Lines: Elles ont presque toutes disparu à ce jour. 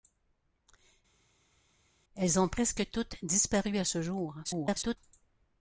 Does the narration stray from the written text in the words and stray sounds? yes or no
yes